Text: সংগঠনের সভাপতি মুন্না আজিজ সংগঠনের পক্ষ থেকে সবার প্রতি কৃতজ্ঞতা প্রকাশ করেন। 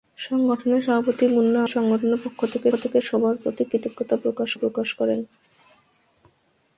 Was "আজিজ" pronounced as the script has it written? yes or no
no